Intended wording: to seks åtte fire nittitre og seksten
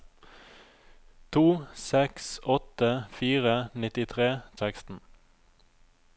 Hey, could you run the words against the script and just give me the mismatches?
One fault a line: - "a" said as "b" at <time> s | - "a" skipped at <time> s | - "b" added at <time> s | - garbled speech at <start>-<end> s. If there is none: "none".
none